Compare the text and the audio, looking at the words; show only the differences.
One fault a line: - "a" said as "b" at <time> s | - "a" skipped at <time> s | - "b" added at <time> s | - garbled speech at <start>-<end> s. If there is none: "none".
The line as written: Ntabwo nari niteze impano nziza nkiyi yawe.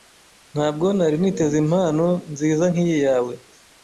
none